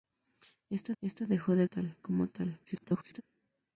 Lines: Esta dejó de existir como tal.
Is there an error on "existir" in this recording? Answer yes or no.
yes